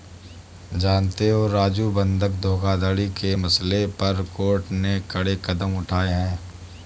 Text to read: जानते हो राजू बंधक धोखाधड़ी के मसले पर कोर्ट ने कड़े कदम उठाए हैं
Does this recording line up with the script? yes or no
yes